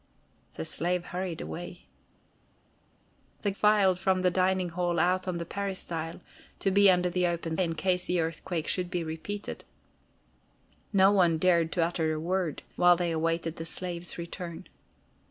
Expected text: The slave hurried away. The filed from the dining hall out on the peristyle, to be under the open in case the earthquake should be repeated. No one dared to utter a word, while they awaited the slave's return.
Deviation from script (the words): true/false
false